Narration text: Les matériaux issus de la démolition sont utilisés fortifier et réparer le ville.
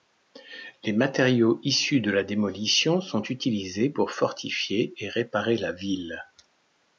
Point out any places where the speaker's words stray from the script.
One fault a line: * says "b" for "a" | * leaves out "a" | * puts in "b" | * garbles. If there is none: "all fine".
* puts in "pour"
* says "la" for "le"